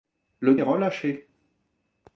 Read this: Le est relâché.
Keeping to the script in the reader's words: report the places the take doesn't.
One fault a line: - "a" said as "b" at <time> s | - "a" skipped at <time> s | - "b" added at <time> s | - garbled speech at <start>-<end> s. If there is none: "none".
none